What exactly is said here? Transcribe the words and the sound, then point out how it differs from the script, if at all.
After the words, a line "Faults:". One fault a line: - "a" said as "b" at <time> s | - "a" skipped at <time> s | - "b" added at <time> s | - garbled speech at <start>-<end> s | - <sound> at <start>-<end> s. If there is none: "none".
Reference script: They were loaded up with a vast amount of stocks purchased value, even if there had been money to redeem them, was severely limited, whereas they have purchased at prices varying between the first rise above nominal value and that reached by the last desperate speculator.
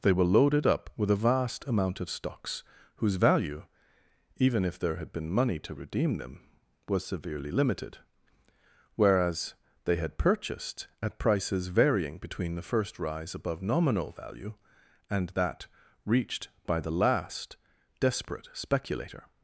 They were loaded up with a vast amount of stocks whose value, even if there had been money to redeem them, was severely limited, whereas they had purchased at prices varying between the first rise above nominal value and that reached by the last desperate speculator.
Faults:
- "purchased" said as "whose" at 3.0 s
- "have" said as "had" at 10.0 s